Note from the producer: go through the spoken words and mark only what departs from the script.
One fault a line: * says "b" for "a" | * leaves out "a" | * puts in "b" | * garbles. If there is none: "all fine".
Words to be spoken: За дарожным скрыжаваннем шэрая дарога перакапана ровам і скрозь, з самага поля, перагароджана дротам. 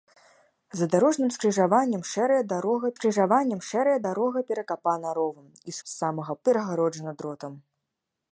* puts in "скрыжаваннем шэрая дарога"
* leaves out "скрозь"
* leaves out "поля"